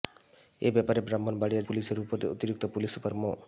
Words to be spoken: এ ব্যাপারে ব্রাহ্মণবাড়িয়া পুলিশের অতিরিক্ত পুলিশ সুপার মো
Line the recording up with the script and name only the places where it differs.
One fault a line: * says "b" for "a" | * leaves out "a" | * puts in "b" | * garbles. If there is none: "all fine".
all fine